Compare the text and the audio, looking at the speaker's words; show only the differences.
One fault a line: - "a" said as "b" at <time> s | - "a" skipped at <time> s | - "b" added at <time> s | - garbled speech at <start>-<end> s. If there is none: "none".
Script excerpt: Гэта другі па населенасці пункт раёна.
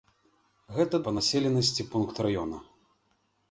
- "другі" skipped at 1.0 s